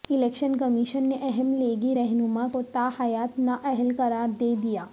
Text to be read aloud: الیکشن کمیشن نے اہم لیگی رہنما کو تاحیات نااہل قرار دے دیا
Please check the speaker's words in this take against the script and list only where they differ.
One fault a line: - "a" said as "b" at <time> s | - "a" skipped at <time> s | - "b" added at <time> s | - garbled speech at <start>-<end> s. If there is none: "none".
none